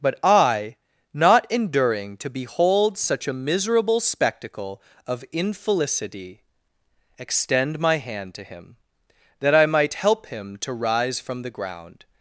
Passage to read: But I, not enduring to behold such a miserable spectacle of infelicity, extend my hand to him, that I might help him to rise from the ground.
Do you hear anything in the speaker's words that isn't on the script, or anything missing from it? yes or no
no